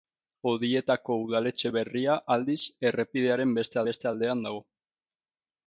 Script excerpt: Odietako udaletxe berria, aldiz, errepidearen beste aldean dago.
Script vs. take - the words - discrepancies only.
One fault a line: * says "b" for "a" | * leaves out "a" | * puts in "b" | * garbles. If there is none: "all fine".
* puts in "beste"